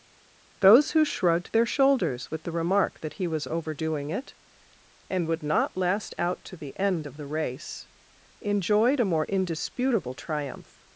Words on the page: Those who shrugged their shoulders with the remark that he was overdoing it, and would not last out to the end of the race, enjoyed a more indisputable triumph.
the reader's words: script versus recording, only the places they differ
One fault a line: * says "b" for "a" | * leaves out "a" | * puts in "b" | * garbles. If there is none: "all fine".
all fine